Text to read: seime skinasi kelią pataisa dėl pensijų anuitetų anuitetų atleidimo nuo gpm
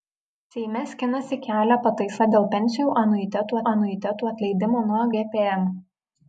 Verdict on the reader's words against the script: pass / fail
pass